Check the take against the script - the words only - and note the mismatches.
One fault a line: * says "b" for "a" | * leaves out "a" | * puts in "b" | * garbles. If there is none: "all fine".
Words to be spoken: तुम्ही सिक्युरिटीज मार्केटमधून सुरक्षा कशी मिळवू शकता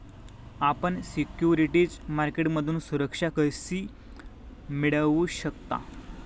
* says "आपण" for "तुम्ही"